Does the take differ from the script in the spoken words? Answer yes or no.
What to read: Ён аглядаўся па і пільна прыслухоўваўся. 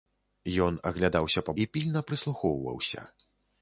no